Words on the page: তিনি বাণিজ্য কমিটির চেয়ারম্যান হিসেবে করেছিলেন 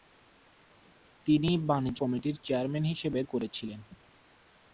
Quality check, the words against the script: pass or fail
pass